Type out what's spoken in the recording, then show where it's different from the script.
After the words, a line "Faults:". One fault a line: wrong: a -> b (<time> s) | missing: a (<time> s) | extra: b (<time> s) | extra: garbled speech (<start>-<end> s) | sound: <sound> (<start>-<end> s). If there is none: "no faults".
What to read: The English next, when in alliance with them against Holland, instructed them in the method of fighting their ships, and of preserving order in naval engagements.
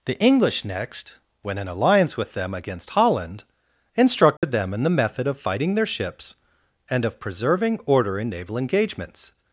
The English next, when in alliance with them against Holland, instructed them in the method of fighting their ships, and of preserving order in naval engagements.
Faults:
sound: dropout (4.4-4.4 s)